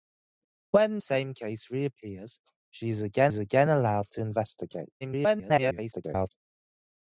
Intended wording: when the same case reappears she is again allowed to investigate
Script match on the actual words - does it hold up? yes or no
no